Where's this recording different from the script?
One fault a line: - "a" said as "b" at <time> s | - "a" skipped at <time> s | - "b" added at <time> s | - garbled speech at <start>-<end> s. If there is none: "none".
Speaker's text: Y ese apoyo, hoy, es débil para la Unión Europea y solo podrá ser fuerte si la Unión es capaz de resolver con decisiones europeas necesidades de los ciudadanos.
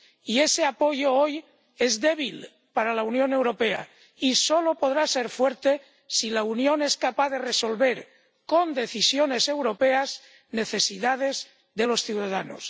none